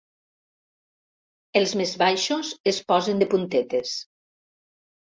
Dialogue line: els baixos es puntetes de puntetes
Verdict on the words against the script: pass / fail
fail